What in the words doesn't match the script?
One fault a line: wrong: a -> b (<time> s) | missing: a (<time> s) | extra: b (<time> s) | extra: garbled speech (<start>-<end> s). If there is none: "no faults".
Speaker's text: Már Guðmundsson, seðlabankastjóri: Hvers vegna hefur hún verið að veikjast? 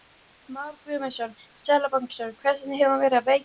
no faults